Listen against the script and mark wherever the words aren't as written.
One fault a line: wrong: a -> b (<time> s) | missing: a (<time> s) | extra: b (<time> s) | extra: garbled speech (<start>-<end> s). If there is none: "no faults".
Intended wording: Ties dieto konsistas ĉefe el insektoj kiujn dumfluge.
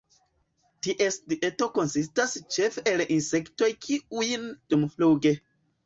no faults